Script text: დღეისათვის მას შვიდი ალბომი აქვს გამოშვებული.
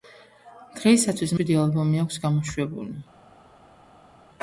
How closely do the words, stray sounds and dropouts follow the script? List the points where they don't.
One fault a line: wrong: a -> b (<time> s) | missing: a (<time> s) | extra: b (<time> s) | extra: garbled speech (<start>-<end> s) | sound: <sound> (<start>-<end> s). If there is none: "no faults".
missing: მას (1.4 s)